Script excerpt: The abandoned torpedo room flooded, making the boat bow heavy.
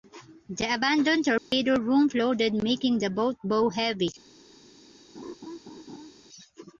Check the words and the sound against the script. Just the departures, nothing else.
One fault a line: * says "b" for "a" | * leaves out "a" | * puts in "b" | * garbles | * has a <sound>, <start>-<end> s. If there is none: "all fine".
* has a dropout, 1.4-1.5 s
* has a laugh, 5.2-6.1 s